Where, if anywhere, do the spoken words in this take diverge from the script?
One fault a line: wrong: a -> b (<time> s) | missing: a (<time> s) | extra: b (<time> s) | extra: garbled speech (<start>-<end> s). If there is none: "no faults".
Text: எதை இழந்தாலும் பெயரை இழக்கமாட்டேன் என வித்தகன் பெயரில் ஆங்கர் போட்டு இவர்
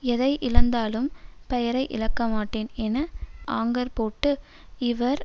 missing: வித்தகன் பெயரில் (3.0 s)